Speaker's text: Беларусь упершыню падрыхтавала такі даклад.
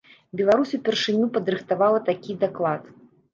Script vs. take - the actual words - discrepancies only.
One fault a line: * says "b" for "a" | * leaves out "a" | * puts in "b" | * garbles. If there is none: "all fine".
all fine